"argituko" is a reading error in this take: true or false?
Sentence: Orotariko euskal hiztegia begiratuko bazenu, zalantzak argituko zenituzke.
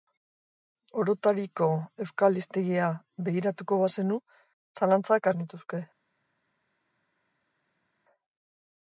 true